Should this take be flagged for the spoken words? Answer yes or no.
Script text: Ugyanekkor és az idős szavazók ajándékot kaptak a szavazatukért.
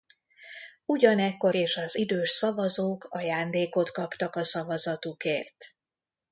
no